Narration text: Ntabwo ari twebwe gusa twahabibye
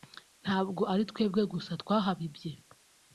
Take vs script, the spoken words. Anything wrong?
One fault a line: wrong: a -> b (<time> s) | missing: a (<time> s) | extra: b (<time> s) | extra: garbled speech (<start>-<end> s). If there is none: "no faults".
no faults